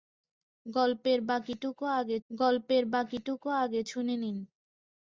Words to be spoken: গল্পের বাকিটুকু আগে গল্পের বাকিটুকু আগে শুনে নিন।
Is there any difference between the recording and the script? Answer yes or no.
no